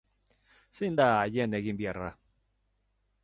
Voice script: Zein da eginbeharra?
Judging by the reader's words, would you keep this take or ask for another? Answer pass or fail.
fail